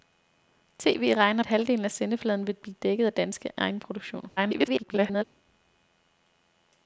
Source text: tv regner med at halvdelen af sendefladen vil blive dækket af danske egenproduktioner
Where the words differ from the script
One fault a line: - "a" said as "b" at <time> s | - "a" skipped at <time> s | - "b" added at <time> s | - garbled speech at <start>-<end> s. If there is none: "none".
- "med" skipped at 1.4 s
- garbled speech at 4.4-5.2 s